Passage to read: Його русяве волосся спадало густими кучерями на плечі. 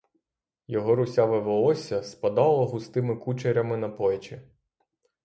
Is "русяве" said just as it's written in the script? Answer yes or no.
yes